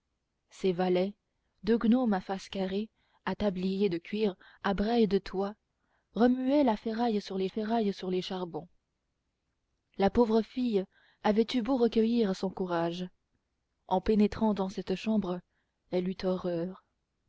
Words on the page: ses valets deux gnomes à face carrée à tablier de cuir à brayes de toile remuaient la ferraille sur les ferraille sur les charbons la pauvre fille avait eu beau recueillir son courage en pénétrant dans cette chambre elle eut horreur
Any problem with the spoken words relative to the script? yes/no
no